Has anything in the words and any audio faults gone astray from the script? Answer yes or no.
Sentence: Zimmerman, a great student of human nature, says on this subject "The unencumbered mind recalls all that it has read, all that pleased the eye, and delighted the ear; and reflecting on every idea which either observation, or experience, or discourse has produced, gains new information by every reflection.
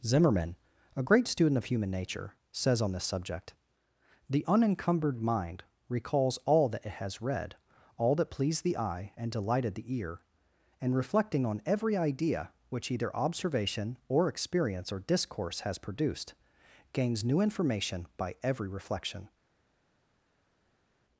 no